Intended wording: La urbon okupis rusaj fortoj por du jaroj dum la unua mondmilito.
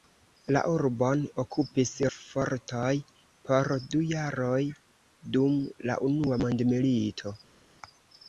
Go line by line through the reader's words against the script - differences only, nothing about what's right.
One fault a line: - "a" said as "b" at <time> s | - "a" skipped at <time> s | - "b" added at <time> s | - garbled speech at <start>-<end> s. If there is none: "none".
- "rusaj" skipped at 1.9 s